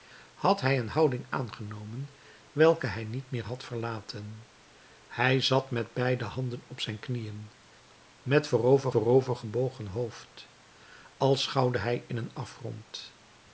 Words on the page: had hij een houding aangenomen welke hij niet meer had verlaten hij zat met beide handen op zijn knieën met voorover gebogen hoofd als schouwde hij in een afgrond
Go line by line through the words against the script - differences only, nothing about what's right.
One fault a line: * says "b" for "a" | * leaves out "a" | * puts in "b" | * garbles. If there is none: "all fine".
* puts in "voorover"